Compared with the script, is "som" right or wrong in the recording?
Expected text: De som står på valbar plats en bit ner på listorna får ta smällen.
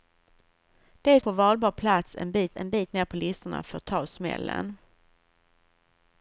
wrong